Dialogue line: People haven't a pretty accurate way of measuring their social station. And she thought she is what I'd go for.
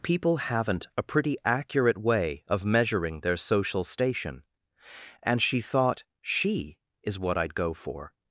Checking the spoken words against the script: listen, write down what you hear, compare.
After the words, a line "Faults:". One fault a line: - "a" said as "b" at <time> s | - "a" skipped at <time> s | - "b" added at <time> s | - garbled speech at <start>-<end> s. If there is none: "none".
People haven't a pretty accurate way of measuring their social station. And she thought she is what I'd go for.
Faults:
none